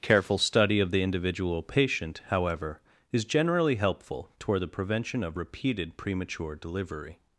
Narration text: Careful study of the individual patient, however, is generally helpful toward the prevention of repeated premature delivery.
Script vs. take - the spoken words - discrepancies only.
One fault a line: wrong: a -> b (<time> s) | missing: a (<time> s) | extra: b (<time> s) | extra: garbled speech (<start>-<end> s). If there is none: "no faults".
no faults